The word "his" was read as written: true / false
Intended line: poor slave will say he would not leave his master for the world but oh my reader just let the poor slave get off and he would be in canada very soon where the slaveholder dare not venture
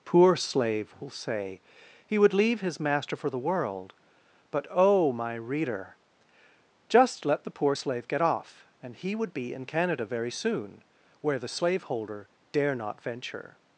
true